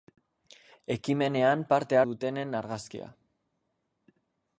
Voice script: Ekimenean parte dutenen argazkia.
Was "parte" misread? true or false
false